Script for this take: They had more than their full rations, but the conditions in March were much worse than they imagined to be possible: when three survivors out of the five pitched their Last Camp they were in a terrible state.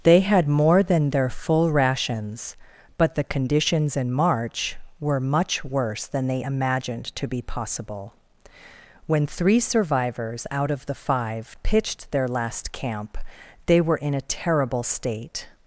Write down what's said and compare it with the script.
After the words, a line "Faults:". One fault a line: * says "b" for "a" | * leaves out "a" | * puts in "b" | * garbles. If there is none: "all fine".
They had more than their full rations, but the conditions in March were much worse than they imagined to be possible: when three survivors out of the five pitched their Last Camp they were in a terrible state.
Faults:
all fine